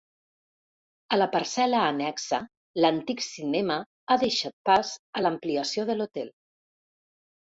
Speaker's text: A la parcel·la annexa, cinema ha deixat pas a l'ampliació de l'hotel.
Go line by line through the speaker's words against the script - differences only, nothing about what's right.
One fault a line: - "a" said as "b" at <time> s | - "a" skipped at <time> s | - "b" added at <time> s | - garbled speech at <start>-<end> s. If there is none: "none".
- "l'antic" added at 2.9 s